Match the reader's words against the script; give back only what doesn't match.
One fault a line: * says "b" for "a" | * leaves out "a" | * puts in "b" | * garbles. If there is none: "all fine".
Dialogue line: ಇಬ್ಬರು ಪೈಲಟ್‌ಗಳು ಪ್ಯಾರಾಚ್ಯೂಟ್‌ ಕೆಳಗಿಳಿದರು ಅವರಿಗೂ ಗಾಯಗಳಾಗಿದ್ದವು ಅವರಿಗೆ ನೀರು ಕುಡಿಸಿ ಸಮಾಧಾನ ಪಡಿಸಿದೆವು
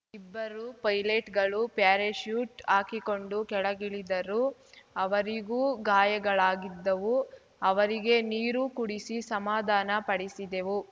* puts in "ಹಾಕಿಕೊಂಡು"